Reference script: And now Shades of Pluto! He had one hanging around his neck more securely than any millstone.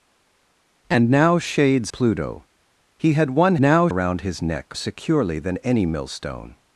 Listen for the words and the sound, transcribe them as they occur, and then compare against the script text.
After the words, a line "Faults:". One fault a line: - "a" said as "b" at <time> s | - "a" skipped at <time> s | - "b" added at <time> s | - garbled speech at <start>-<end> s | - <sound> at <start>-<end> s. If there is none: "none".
And now Shades Pluto! He had one now around his neck securely than any millstone.
Faults:
- "of" skipped at 1.9 s
- "hanging" said as "now" at 3.6 s
- "more" skipped at 4.8 s